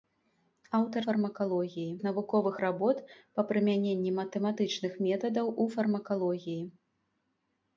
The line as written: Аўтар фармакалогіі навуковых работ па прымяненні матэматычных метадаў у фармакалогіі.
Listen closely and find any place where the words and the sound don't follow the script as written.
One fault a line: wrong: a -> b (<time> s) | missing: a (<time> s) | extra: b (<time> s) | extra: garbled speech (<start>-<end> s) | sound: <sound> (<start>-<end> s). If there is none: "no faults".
no faults